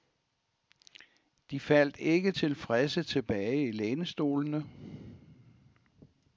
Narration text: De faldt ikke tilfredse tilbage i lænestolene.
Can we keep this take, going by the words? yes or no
yes